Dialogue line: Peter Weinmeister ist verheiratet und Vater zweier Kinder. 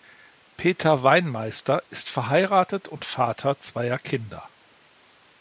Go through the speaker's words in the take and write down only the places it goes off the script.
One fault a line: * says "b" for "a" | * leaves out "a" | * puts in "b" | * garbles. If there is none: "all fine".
all fine